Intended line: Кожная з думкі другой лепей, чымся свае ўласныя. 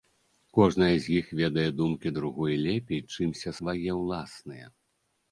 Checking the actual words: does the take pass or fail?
fail